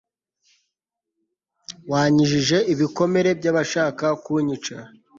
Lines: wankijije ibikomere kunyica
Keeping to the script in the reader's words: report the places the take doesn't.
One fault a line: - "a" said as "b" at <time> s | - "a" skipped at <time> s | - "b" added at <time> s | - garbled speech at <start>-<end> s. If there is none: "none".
- "by'abashaka" added at 3.4 s